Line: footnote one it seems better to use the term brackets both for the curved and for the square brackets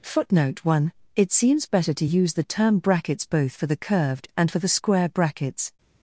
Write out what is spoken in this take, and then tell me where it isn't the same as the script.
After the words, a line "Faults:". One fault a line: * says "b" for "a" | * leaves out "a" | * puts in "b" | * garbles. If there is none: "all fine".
footnote one it seems better to use the term brackets both for the curved and for the square brackets
Faults:
all fine